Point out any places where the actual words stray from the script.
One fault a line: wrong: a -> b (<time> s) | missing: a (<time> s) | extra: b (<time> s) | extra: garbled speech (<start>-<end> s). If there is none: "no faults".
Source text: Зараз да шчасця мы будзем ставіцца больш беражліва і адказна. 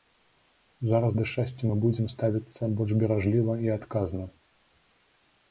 no faults